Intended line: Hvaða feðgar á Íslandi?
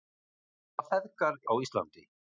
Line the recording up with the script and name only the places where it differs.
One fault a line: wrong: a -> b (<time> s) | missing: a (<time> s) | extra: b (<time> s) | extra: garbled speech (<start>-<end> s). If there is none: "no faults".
no faults